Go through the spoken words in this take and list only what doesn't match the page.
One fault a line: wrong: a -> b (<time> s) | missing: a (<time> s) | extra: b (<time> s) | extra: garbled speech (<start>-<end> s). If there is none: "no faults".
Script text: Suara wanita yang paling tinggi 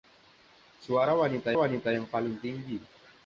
extra: wanita (1.5 s)